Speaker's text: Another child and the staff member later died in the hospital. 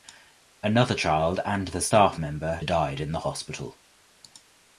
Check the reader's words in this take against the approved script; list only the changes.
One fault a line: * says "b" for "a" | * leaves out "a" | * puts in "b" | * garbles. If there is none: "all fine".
* leaves out "later"